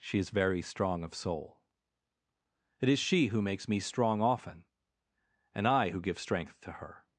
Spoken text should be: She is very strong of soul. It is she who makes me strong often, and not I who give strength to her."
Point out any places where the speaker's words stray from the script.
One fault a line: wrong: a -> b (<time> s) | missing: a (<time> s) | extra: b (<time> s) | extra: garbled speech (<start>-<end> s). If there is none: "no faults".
missing: not (5.7 s)